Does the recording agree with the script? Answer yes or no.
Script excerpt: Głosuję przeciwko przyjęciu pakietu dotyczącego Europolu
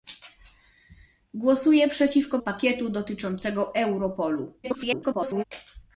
no